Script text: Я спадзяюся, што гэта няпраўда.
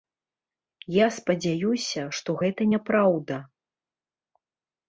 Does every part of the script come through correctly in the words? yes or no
yes